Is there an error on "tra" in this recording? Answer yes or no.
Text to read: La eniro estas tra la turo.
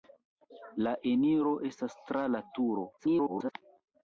no